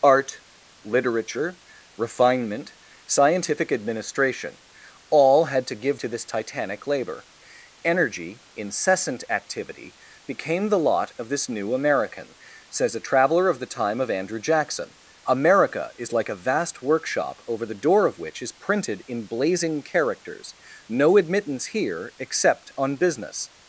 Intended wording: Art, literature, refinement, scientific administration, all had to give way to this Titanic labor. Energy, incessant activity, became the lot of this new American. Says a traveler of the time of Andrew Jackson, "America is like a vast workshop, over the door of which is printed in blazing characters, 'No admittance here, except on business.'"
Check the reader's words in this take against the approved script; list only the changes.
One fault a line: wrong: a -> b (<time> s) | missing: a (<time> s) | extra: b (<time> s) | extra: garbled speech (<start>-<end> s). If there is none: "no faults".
missing: way (6.0 s)